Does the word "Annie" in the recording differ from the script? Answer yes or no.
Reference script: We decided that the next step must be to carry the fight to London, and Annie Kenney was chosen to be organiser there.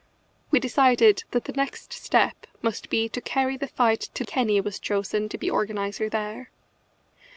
yes